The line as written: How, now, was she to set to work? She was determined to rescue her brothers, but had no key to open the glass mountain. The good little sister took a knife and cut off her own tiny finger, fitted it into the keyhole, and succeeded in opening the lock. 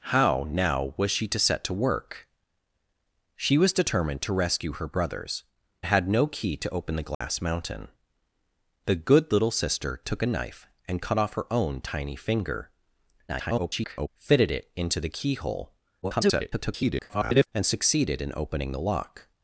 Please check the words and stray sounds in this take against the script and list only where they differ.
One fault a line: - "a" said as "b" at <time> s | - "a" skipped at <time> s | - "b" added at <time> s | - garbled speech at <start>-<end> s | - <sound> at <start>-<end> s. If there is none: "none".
- "but" skipped at 5.4 s
- dropout at 7.1-7.2 s
- garbled speech at 13.3-14.1 s
- garbled speech at 16.0-17.5 s